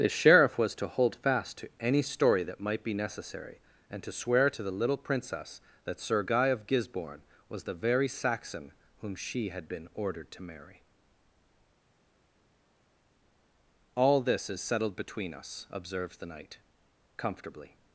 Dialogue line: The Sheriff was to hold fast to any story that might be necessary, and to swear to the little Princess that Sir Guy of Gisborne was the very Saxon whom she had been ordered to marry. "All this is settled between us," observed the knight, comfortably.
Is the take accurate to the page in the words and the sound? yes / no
yes